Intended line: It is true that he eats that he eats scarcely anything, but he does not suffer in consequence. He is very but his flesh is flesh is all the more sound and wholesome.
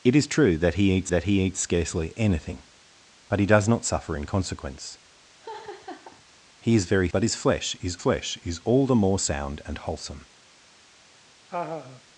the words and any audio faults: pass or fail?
fail